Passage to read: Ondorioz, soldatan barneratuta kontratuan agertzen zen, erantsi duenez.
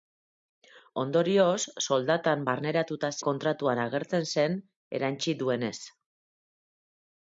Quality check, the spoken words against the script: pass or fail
pass